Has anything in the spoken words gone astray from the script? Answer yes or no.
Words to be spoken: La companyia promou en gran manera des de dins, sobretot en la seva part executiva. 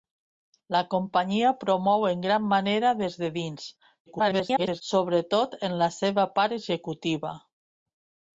yes